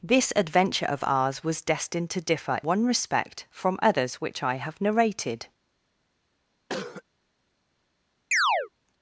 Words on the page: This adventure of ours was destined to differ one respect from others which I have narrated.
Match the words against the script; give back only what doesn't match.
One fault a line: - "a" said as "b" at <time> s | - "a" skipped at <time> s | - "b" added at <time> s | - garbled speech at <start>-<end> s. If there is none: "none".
none